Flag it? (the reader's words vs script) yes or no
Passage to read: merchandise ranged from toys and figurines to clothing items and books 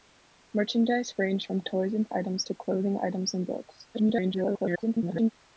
yes